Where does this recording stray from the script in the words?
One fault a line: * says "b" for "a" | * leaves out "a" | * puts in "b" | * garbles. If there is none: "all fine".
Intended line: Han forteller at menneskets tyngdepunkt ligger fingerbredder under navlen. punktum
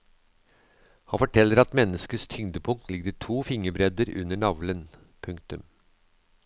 * puts in "to"